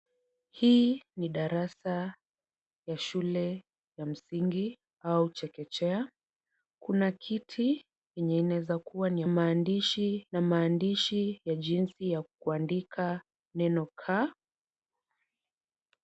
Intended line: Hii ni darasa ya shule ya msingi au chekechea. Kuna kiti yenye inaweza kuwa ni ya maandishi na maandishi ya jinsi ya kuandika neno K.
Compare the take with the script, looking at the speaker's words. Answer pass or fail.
pass